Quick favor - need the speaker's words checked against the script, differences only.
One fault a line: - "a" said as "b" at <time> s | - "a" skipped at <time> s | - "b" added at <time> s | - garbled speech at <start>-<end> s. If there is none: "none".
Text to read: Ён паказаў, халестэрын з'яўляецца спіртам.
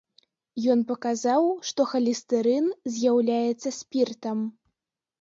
- "што" added at 1.7 s